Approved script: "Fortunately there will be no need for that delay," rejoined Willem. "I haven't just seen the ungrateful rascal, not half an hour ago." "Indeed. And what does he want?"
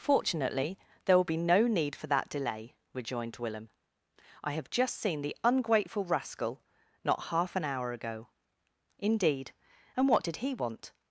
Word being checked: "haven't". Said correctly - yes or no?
no